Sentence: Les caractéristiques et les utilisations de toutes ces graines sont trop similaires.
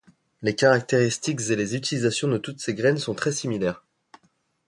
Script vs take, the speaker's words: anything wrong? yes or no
yes